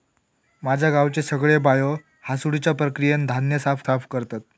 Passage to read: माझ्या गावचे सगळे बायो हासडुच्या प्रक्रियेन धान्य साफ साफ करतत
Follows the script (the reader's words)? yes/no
yes